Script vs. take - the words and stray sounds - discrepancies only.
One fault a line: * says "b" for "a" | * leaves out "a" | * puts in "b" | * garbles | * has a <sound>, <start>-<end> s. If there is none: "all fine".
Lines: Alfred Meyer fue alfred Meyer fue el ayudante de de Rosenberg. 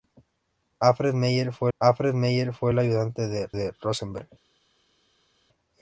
all fine